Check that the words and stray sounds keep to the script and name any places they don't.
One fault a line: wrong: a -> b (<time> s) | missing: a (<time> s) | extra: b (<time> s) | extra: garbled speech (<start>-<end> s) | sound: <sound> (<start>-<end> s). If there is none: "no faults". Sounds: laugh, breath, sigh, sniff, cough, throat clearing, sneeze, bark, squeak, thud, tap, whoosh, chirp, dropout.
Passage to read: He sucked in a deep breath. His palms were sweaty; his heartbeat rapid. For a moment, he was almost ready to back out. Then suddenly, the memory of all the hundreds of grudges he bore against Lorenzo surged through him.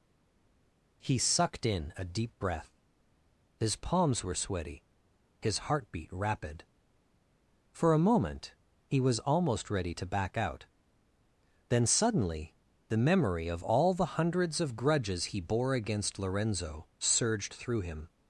no faults